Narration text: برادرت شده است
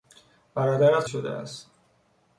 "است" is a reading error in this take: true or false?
false